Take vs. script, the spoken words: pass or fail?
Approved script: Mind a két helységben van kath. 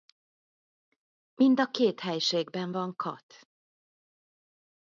pass